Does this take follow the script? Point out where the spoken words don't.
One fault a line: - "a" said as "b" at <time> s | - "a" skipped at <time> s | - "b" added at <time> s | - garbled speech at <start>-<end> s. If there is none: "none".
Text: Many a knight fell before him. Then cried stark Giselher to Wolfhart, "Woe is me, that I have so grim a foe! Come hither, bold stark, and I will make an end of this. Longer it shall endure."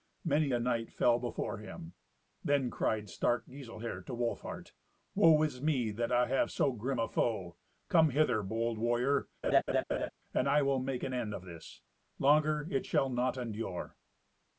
- "stark" said as "warrior" at 8.8 s
- "not" added at 13.1 s